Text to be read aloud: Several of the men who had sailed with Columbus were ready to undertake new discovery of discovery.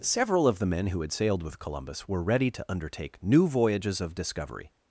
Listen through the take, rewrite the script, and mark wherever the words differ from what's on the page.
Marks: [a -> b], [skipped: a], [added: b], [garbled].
Several of the men who had sailed with Columbus were ready to undertake new [discovery -> voyages] of discovery.